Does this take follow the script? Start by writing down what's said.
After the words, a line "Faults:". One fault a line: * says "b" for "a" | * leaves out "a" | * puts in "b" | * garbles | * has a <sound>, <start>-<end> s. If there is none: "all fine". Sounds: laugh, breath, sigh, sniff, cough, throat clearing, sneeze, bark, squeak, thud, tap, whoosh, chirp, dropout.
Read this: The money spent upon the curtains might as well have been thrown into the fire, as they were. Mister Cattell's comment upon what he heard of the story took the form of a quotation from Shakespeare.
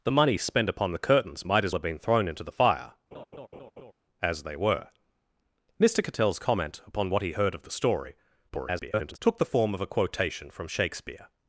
The money spent upon the curtains might as have been thrown into the fire, as they were. Mister Cattell's comment upon what he heard of the story [garbled] took the form of a quotation from Shakespeare.
Faults:
* leaves out "well"
* has a laugh, 3.1-3.9 s
* garbles